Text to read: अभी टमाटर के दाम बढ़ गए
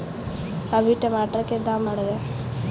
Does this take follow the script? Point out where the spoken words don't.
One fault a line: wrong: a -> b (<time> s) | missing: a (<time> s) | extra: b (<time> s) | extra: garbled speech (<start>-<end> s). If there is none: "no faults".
no faults